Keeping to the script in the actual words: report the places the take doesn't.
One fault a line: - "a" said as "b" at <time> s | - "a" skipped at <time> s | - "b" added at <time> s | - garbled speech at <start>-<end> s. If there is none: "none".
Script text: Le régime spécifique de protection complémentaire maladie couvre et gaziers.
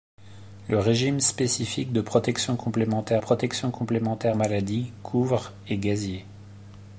- "protection complémentaire" added at 3.2 s